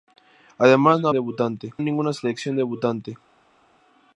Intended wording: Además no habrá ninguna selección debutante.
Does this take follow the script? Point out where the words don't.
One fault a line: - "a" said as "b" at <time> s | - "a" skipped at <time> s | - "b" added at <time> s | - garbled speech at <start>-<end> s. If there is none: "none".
- "habrá" said as "debutante" at 1.1 s